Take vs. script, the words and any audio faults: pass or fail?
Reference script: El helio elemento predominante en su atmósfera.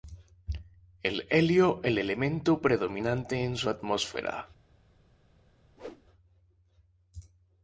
fail